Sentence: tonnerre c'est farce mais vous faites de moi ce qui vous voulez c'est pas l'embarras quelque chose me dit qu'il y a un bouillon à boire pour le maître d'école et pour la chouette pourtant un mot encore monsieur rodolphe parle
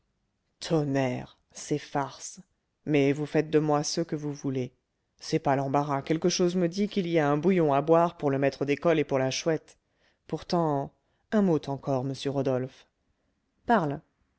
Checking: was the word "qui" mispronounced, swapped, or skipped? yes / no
yes